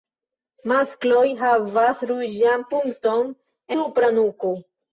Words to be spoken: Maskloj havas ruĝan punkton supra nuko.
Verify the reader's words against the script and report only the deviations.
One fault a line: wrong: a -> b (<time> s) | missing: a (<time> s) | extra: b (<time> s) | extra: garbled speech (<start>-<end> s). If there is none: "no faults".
no faults